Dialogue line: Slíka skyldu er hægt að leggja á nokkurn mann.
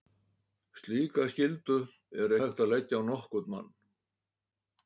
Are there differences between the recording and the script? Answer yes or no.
no